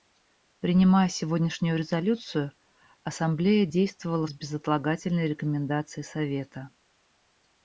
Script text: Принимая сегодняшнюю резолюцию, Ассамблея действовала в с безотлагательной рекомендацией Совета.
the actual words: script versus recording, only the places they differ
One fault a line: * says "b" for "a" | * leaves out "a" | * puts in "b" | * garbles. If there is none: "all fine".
all fine